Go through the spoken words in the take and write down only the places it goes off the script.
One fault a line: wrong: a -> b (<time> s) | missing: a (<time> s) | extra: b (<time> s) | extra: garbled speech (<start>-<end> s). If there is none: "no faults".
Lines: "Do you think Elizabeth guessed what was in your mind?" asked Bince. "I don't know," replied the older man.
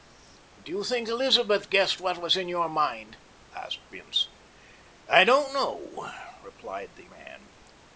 missing: older (7.1 s)